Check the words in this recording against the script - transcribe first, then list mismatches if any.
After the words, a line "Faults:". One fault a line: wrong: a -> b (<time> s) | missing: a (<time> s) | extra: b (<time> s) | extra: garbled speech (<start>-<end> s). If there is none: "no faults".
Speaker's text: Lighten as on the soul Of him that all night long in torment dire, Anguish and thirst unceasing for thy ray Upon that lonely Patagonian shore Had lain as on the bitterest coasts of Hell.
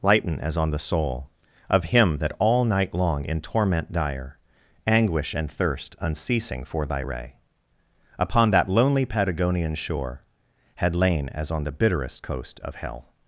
Lighten as on the soul Of him that all night long in torment dire, Anguish and thirst unceasing for thy ray Upon that lonely Patagonian shore Had lain as on the bitterest coast of Hell.
Faults:
wrong: coasts -> coast (12.2 s)